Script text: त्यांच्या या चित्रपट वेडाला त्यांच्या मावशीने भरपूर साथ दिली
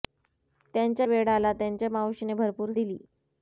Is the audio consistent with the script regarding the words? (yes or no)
no